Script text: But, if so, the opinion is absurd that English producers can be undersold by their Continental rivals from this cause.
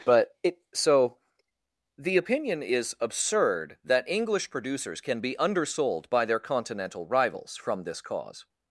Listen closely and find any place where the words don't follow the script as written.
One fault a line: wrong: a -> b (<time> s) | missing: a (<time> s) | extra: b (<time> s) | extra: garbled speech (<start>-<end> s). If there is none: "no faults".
wrong: if -> it (0.4 s)